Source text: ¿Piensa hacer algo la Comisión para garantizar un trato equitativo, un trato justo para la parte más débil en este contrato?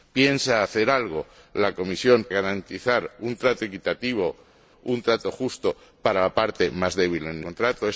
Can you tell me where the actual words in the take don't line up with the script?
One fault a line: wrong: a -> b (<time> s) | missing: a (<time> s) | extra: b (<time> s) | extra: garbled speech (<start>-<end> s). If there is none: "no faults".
missing: para (2.3 s)
missing: este (7.4 s)